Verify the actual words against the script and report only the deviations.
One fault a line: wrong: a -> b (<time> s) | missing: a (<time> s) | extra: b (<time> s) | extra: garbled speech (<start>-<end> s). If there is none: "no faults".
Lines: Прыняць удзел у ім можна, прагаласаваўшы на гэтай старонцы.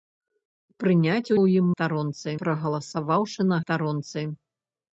missing: удзел (1.3 s)
wrong: можна -> старонцы (1.7 s)
missing: гэтай (3.6 s)